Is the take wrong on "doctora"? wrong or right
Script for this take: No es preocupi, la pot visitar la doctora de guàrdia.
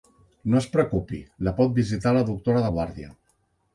right